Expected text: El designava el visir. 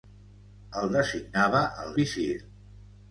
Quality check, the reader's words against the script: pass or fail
pass